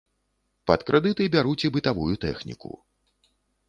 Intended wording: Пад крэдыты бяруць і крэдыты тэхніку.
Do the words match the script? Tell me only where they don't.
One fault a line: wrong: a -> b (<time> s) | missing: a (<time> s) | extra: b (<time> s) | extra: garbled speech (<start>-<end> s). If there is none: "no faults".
wrong: крэдыты -> бытавую (1.8 s)